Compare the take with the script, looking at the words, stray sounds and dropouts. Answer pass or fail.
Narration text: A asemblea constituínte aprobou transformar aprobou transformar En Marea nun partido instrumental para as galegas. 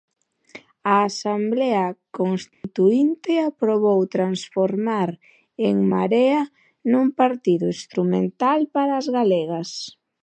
fail